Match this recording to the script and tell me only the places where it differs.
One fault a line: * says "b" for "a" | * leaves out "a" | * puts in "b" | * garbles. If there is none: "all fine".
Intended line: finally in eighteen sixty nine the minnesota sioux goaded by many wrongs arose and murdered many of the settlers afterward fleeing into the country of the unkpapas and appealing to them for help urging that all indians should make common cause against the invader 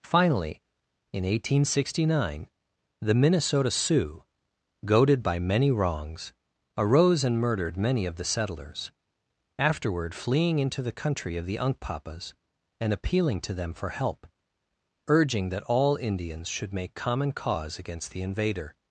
all fine